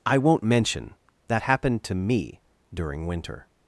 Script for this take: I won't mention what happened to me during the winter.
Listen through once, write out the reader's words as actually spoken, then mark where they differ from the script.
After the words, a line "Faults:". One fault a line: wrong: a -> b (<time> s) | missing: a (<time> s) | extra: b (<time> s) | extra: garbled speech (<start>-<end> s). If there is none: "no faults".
I won't mention that happened to me during winter.
Faults:
wrong: what -> that (1.3 s)
missing: the (3.0 s)